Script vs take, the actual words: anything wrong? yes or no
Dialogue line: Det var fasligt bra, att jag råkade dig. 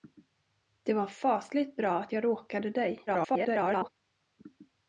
yes